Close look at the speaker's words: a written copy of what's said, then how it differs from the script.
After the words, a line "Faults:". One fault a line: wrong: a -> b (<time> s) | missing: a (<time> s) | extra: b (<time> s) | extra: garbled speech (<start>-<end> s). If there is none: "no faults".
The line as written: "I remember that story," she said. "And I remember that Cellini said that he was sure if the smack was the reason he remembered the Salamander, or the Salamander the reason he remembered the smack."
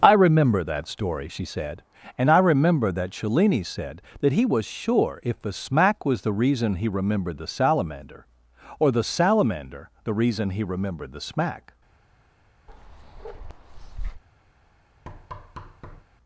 "I remember that story," she said. "And I remember that Cellini said that he was sure if the smack was the reason he remembered the Salamander, or the Salamander the reason he remembered the smack."
Faults:
no faults